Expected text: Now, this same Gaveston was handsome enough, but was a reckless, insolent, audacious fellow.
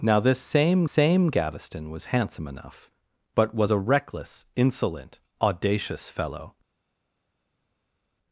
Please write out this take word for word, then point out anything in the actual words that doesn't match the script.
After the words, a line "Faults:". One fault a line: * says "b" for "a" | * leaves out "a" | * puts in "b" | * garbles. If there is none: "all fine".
Now, this same same Gaveston was handsome enough, but was a reckless, insolent, audacious fellow.
Faults:
* puts in "same"